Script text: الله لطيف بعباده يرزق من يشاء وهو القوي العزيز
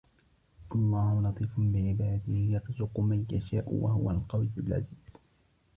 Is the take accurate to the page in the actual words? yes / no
yes